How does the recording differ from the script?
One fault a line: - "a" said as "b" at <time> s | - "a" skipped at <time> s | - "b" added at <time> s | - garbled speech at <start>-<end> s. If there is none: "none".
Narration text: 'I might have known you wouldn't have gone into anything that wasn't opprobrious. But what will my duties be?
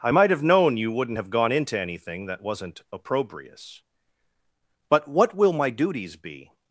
none